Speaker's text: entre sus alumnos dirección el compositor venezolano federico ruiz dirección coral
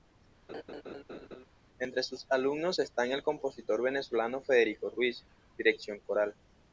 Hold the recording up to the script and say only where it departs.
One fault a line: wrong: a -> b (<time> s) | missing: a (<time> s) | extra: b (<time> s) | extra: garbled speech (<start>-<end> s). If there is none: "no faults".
wrong: dirección -> están (2.8 s)